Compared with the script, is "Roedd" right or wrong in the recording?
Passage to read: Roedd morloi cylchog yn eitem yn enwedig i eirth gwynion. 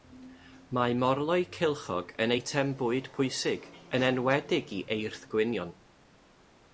wrong